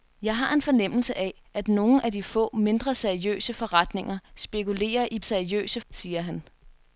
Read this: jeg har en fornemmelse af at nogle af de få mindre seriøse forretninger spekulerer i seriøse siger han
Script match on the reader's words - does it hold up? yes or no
yes